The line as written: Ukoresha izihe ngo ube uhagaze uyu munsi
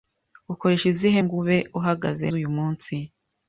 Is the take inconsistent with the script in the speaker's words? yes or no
no